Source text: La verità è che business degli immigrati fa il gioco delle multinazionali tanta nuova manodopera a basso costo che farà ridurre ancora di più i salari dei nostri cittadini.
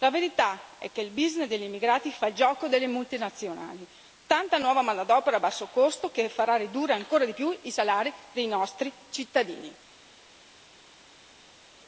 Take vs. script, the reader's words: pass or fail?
fail